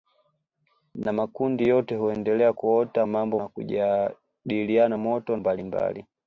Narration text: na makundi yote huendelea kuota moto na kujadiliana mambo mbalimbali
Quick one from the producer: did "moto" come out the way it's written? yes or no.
no